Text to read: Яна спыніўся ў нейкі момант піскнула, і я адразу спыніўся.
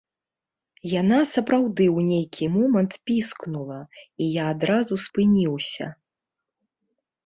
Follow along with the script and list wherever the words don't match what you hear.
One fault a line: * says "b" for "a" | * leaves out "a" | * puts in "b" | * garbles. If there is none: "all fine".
* says "сапраўды" for "спыніўся"